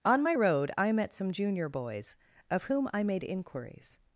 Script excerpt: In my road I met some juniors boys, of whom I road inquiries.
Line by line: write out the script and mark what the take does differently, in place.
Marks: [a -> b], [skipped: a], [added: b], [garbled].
[In -> On] my road I met some [juniors -> junior] boys, of whom I [road -> made] inquiries.